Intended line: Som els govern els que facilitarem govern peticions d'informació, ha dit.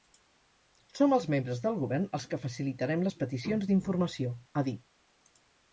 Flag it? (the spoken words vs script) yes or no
yes